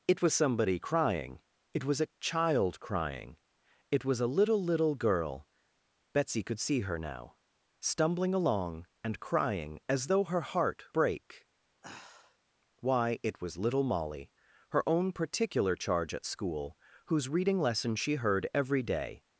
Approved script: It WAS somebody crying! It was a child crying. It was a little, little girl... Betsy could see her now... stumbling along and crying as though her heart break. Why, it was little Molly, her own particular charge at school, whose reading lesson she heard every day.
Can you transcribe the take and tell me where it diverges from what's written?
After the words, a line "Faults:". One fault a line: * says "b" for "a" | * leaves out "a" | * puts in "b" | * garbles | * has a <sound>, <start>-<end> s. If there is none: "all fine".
It WAS somebody crying! It was a child crying. It was a little, little girl... Betsy could see her now... stumbling along and crying as though her heart break. Why, it was little Molly, her own particular charge at school, whose reading lesson she heard every day.
Faults:
* has a sigh, 11.8-12.4 s